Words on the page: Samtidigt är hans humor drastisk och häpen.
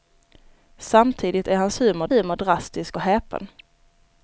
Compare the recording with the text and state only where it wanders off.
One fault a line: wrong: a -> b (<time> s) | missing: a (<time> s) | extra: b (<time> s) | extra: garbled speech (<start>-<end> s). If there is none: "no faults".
extra: humor (2.1 s)